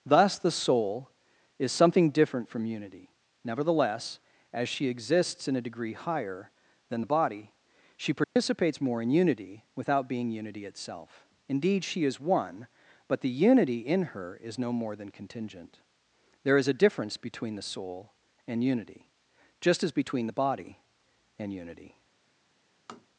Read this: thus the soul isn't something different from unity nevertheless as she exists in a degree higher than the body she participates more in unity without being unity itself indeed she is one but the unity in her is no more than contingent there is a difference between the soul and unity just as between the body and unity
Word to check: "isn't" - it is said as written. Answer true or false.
false